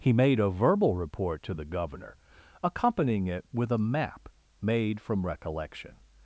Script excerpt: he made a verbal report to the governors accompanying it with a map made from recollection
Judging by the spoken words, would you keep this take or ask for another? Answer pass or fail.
fail